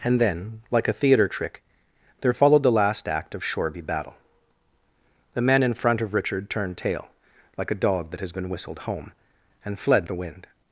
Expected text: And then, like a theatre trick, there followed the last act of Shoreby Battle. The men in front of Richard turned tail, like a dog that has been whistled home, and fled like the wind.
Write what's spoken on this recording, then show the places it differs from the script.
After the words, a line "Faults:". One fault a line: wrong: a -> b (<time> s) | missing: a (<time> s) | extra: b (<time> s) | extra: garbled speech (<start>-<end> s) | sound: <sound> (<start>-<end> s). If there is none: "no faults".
And then, like a theatre trick, there followed the last act of Shoreby Battle. The men in front of Richard turned tail, like a dog that has been whistled home, and fled the wind.
Faults:
missing: like (10.1 s)